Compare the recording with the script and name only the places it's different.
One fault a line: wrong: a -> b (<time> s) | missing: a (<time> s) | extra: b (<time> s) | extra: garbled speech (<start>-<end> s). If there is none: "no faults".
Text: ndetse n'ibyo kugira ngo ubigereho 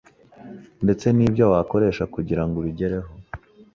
extra: wakoresha (1.5 s)